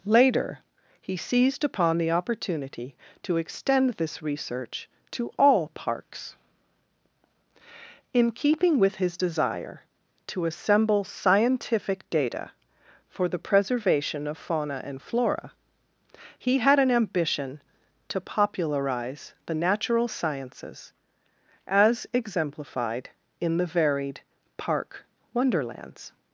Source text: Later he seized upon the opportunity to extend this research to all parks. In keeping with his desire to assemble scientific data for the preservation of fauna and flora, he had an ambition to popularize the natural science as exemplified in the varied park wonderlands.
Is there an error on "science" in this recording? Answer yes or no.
yes